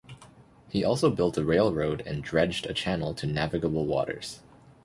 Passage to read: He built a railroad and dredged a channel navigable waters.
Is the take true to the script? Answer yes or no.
no